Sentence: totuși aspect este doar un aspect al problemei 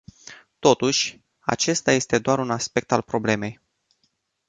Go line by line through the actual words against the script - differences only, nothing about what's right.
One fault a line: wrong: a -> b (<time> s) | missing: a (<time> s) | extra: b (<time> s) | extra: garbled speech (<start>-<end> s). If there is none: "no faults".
wrong: aspect -> acesta (1.4 s)